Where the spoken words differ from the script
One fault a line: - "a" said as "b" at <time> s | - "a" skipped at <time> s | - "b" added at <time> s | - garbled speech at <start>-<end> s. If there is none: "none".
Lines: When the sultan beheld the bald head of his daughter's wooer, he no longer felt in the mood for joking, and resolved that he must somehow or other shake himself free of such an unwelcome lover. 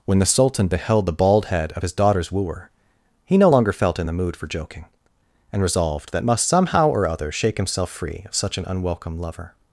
- "he" skipped at 6.2 s